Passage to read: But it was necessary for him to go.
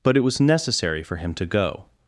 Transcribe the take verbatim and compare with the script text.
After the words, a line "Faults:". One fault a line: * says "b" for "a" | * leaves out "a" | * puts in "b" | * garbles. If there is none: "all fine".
But it was necessary for him to go.
Faults:
all fine